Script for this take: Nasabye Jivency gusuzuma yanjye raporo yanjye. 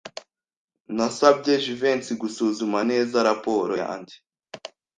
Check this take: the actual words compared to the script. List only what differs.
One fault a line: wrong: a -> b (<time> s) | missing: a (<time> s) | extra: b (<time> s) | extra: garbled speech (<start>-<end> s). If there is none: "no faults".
wrong: yanjye -> neza (2.9 s)